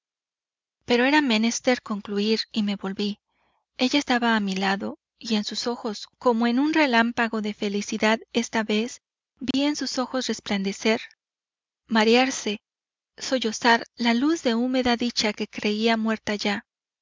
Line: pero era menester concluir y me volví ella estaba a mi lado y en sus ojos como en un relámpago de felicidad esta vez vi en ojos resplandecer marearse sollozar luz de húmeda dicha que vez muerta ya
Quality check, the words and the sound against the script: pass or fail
fail